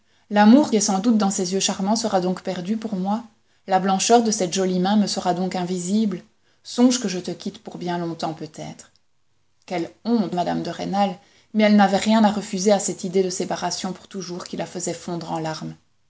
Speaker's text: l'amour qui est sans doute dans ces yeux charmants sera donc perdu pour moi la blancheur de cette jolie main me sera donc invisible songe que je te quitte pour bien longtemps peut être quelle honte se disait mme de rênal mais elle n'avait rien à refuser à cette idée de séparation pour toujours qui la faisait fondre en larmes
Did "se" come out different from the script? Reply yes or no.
yes